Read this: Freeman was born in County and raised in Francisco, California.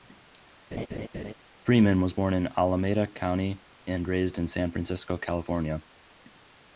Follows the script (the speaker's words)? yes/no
no